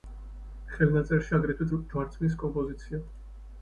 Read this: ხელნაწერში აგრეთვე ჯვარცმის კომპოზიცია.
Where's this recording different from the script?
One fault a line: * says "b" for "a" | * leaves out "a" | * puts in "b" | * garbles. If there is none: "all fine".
all fine